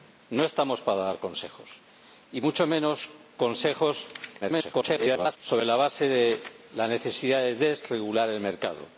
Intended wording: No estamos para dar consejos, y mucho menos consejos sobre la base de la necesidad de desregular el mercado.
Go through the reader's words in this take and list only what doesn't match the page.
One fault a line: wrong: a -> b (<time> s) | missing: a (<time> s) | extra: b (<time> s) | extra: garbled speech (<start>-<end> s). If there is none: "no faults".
extra: garbled speech (4.4-5.4 s)